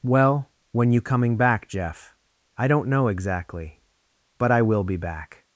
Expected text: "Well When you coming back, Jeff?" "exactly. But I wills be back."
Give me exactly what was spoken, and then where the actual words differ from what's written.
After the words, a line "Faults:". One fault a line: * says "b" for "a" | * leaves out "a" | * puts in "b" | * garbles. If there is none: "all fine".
"Well When you coming back, Jeff?" "I don't know exactly. But I will be back."
Faults:
* puts in "I don't know"
* says "will" for "wills"